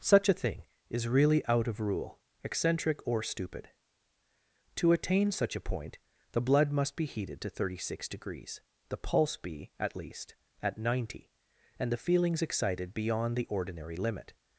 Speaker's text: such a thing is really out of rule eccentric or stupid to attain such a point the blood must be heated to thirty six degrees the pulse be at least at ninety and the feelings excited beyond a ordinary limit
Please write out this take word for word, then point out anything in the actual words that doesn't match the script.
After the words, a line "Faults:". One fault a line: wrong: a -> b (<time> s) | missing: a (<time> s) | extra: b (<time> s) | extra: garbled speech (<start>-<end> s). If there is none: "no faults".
such a thing is really out of rule eccentric or stupid to attain such a point the blood must be heated to thirty six degrees the pulse be at least at ninety and the feelings excited beyond the ordinary limit
Faults:
wrong: a -> the (13.4 s)